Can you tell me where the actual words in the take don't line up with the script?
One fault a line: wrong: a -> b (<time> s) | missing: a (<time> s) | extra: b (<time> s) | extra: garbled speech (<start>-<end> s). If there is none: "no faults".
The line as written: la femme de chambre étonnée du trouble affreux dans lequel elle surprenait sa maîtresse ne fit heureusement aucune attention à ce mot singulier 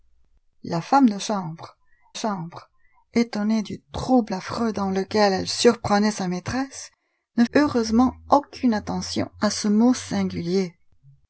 extra: chambre (2.1 s)
missing: fit (7.4 s)